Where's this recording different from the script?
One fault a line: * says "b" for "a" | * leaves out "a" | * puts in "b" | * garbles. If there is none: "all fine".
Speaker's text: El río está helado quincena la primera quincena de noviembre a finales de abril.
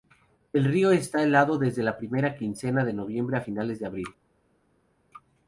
* says "desde" for "quincena"